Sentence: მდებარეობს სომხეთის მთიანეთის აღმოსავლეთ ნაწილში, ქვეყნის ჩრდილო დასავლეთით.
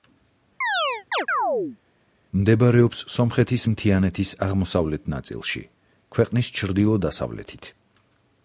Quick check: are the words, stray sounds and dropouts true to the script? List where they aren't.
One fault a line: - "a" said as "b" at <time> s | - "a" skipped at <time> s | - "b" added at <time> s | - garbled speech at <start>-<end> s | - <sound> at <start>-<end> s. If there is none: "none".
- chirp at 0.6-1.8 s